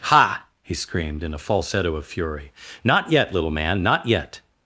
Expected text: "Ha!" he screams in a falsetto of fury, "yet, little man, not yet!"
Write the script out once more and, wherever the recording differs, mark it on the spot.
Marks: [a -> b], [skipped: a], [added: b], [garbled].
"Ha!" he [screams -> screamed] in a falsetto of fury, [added: not] "yet, little man, not yet!"